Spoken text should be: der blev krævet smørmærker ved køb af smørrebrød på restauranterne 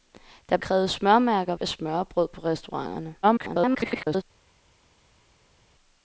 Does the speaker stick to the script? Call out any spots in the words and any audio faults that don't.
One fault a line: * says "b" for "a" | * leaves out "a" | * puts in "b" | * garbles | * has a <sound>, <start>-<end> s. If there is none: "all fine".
* leaves out "blev"
* leaves out "ved køb"
* garbles